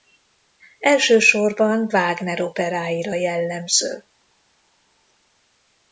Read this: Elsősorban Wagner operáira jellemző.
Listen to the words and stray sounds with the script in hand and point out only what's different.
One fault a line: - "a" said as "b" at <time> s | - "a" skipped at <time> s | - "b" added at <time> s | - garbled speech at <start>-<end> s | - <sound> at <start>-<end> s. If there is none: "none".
none